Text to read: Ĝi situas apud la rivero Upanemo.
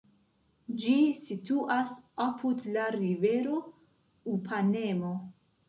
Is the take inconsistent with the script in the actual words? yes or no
no